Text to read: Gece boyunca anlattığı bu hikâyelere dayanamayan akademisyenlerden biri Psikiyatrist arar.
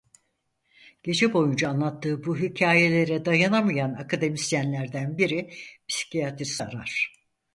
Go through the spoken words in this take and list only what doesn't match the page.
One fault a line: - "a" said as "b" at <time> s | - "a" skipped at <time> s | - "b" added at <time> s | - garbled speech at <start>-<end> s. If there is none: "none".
none